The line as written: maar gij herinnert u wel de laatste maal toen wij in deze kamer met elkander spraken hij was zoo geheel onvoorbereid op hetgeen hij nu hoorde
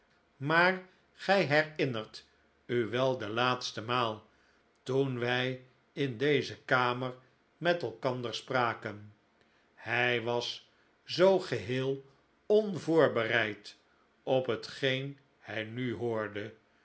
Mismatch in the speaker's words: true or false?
false